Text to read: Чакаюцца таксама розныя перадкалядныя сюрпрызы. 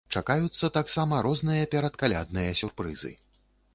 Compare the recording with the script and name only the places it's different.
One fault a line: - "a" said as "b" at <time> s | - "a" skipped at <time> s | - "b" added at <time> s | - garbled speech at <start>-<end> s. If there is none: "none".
none